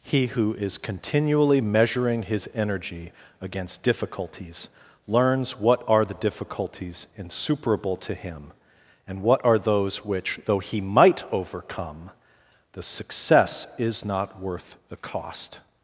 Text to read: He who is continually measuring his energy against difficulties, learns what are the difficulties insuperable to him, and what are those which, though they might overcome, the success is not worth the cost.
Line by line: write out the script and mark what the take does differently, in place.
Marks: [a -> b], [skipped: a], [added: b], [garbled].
He who is continually measuring his energy against difficulties, learns what are the difficulties insuperable to him, and what are those which, though [they -> he] might overcome, the success is not worth the cost.